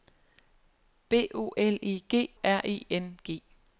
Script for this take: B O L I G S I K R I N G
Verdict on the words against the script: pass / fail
fail